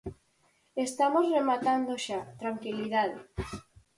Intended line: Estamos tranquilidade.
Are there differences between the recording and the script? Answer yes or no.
yes